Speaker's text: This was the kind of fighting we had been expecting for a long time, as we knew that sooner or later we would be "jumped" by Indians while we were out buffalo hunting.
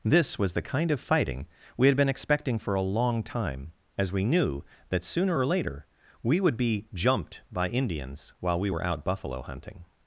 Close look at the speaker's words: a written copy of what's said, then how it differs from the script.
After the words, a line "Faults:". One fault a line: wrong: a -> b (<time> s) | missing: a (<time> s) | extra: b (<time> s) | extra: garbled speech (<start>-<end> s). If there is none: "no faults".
This was the kind of fighting we had been expecting for a long time, as we knew that sooner or later we would be "jumped" by Indians while we were out buffalo hunting.
Faults:
no faults